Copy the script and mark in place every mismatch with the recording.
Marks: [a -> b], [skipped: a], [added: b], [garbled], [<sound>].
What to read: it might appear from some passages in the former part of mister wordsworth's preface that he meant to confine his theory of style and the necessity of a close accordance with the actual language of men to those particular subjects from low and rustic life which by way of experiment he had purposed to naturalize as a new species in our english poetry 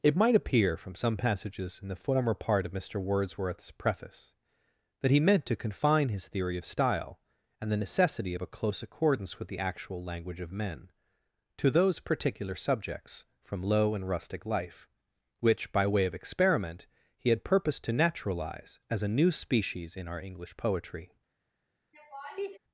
it might appear from some passages in the former part of mister wordsworth's preface that he meant to confine his theory of style and the necessity of a close accordance with the actual language of men to those particular subjects from low and rustic life which by way of experiment he had purposed to naturalize as a new species in our english poetry [laugh]